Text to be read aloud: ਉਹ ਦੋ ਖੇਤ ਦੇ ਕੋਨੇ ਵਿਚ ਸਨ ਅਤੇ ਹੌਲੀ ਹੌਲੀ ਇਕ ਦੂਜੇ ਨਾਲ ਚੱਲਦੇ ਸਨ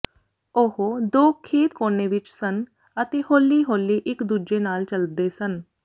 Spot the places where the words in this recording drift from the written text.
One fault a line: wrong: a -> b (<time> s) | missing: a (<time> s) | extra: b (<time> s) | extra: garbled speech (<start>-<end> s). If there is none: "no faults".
missing: ਦੇ (1.8 s)